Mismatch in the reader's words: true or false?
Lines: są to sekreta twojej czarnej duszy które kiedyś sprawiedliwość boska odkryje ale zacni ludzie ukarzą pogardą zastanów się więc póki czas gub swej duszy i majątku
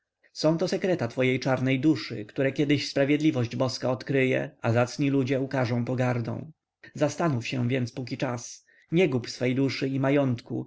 true